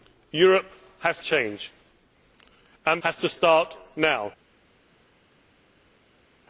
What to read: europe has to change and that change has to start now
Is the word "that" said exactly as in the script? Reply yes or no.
no